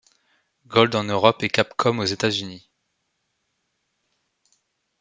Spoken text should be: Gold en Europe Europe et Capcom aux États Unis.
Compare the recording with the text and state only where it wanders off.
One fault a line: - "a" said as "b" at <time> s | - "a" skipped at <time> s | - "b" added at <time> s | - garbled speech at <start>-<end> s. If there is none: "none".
- "Europe" skipped at 1.4 s